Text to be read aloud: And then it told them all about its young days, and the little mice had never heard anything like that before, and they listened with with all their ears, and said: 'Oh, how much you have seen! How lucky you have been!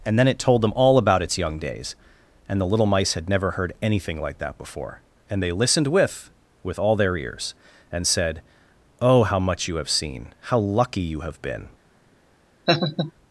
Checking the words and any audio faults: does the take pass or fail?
fail